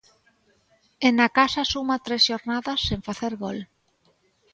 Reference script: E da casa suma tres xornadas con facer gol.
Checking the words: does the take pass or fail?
fail